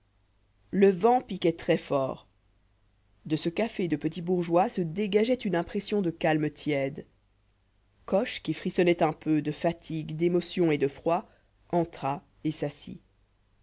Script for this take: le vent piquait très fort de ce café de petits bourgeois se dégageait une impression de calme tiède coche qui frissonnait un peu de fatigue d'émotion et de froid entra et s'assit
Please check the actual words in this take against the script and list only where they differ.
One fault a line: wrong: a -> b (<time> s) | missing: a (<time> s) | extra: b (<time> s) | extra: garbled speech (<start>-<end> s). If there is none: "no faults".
no faults